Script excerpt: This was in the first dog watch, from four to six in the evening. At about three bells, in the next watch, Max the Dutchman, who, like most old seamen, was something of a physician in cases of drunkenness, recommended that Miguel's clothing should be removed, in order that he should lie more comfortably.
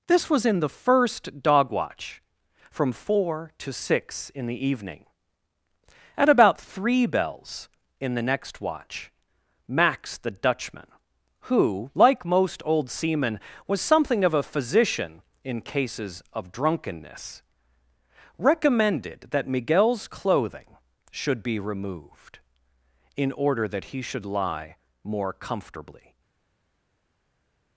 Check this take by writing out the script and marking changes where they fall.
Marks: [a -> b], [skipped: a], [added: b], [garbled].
This was in the first dog watch, from four to six in the evening. At about three bells, in the next watch, Max the Dutchman, who, like most old seamen, was something of a physician in cases of drunkenness, recommended that Miguel's clothing should be removed, in order that he should lie more comfortably.